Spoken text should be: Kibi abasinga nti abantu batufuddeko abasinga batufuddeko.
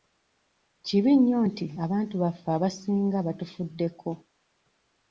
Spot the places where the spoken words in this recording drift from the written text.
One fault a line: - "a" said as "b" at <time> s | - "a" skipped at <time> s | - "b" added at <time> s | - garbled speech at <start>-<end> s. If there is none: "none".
- "abasinga" said as "nnyo" at 1.2 s
- "batufuddeko" said as "baffe" at 2.2 s